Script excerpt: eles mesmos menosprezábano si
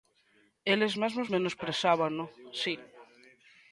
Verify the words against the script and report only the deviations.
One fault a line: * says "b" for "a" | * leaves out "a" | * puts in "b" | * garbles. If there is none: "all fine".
all fine